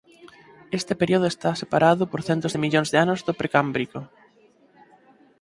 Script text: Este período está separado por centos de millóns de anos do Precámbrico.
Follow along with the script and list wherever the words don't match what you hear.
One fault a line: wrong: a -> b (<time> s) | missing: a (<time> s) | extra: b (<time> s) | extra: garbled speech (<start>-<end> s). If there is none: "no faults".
no faults